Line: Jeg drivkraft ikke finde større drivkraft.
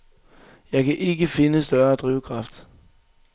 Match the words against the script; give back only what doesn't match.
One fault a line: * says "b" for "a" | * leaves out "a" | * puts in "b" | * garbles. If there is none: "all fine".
* says "kan" for "drivkraft"